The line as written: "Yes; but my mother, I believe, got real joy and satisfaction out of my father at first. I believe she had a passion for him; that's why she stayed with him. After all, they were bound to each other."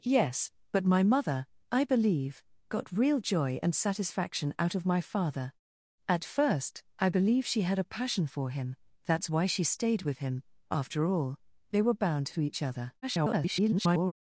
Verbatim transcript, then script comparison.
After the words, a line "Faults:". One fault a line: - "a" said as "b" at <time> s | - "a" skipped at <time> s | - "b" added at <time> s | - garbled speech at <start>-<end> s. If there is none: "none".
"Yes; but my mother, I believe, got real joy and satisfaction out of my father at first. I believe she had a passion for him; that's why she stayed with him. After all, they were bound to each other." [garbled]
Faults:
- garbled speech at 13.0-14.1 s